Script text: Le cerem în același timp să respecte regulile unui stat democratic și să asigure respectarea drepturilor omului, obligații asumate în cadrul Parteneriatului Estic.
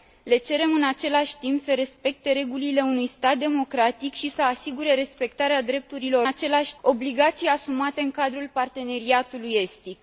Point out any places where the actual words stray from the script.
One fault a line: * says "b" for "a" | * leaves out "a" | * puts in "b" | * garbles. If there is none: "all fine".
* says "același" for "omului"